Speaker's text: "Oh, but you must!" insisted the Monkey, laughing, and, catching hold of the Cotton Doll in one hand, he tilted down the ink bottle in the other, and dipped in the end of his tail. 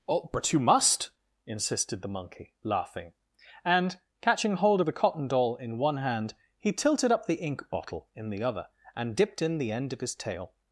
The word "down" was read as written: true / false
false